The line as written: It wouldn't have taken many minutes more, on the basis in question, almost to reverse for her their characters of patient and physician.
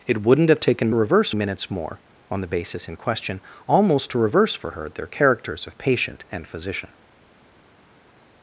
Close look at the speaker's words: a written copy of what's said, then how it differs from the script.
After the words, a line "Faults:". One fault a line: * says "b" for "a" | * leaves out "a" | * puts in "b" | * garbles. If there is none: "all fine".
It wouldn't have taken reverse minutes more, on the basis in question, almost to reverse for her their characters of patient and physician.
Faults:
* says "reverse" for "many"